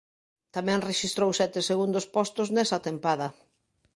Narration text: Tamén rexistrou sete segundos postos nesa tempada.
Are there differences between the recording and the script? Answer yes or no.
no